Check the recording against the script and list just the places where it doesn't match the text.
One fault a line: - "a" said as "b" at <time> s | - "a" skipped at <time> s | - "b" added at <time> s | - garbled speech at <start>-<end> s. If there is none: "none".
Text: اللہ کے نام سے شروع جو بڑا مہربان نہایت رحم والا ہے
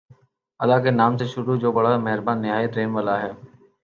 none